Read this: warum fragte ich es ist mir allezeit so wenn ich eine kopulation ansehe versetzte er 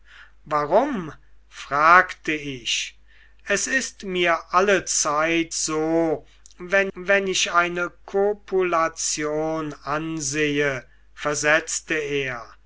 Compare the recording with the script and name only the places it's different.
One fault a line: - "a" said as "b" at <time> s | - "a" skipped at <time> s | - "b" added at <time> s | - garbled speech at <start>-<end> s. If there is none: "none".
- "wenn" added at 6.9 s